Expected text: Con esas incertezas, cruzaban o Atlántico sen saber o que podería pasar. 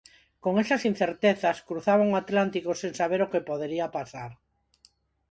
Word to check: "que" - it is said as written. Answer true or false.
true